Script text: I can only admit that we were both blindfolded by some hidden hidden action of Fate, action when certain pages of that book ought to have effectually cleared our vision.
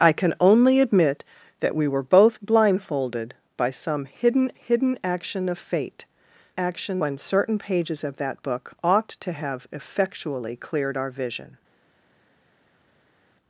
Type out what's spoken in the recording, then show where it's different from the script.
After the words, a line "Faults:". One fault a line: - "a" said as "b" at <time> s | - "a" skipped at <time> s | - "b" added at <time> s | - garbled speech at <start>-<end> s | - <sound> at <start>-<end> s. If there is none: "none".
I can only admit that we were both blindfolded by some hidden hidden action of Fate, action when certain pages of that book ought to have effectually cleared our vision.
Faults:
none